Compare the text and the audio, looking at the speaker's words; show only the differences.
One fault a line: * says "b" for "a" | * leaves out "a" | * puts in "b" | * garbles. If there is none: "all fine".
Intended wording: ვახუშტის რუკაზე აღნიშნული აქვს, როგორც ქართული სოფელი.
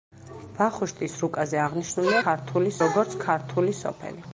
* says "ქართული" for "აქვს"